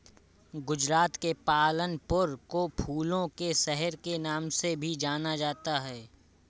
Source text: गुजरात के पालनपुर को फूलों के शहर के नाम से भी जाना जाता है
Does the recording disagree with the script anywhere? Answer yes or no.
no